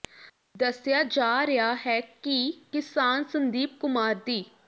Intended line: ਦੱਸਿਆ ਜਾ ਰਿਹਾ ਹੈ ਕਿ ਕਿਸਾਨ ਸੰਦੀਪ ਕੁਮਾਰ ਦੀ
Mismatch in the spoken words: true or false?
false